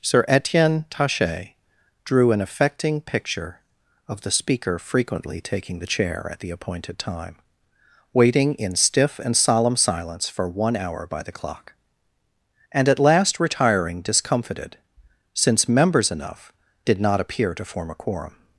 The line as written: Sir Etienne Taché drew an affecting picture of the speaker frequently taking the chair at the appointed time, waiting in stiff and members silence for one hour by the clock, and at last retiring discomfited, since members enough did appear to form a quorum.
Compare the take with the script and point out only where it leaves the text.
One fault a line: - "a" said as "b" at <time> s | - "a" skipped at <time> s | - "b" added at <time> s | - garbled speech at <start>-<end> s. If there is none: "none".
- "members" said as "solemn" at 9.4 s
- "not" added at 17.0 s